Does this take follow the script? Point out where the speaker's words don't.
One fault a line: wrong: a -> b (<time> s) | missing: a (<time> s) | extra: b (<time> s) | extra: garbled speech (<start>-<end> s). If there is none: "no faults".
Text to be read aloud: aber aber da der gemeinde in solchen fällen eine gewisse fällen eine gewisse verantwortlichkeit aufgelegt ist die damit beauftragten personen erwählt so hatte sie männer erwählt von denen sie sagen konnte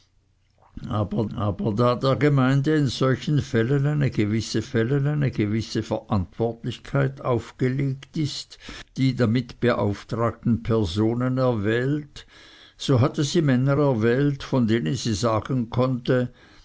no faults